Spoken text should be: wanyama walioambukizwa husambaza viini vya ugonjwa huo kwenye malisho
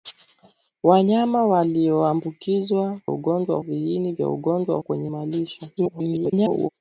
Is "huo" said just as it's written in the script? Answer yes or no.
no